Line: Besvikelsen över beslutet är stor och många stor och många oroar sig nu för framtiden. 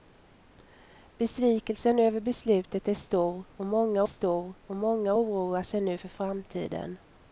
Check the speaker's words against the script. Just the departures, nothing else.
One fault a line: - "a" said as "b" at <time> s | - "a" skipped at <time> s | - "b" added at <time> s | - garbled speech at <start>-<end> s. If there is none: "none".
none